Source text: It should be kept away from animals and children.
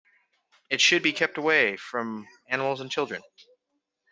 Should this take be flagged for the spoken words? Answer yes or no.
no